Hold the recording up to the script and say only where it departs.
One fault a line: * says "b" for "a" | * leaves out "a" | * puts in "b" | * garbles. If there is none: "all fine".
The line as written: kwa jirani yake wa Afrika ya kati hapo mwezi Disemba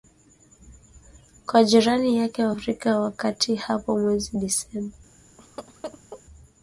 all fine